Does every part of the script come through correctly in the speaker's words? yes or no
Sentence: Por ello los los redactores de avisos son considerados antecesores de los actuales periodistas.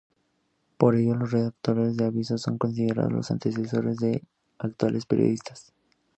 no